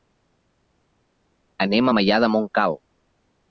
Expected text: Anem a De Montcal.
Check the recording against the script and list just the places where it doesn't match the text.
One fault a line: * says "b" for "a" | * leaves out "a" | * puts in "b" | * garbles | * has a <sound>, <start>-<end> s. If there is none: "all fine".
* puts in "Maià"